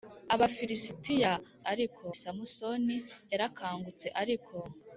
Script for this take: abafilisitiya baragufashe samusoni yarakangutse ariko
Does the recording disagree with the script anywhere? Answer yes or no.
yes